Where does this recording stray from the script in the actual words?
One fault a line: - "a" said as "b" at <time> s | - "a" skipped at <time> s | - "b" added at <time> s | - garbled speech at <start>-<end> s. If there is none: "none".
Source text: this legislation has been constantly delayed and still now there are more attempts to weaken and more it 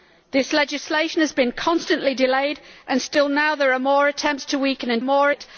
none